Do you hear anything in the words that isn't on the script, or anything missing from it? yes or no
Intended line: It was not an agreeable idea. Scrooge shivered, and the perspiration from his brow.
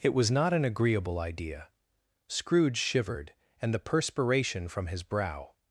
no